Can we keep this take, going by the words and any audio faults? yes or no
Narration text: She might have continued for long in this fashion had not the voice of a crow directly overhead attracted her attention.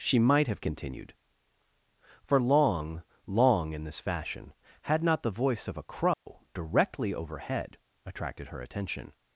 no